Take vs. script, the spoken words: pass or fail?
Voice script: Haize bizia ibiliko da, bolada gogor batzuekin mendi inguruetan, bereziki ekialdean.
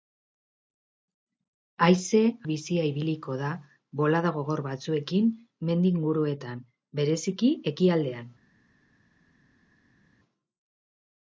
pass